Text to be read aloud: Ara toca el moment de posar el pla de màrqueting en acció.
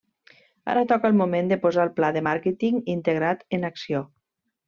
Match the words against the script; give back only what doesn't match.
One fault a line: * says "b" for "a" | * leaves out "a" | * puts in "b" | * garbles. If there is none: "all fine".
* puts in "integrat"